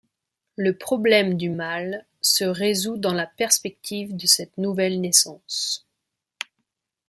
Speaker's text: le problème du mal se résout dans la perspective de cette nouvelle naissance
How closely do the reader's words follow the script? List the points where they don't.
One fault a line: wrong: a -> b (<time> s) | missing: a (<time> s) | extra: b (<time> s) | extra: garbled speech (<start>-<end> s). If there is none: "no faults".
no faults